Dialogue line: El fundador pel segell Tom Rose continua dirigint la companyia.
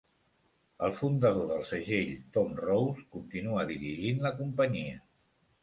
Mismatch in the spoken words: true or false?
true